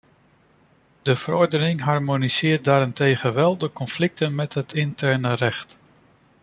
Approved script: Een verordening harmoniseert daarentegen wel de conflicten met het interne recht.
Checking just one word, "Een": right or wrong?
wrong